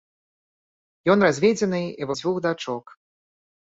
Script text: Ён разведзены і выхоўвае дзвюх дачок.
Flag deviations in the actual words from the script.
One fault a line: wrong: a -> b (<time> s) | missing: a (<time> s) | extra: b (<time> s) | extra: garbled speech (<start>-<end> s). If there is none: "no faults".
missing: выхоўвае (2.1 s)